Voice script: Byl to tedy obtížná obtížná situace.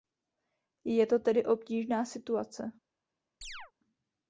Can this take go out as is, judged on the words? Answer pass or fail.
fail